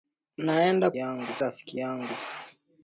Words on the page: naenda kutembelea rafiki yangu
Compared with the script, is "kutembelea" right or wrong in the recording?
wrong